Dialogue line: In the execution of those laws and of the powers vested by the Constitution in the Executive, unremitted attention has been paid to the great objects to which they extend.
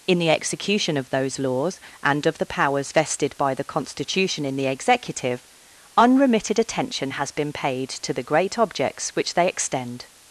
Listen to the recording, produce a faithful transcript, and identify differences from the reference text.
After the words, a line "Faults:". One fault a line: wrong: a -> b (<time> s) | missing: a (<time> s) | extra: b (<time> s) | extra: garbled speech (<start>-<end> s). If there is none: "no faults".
In the execution of those laws and of the powers vested by the Constitution in the Executive, unremitted attention has been paid to the great objects which they extend.
Faults:
missing: to (9.1 s)